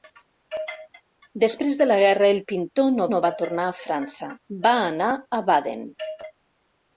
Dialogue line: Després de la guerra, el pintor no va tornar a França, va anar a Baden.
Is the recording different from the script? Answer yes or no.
yes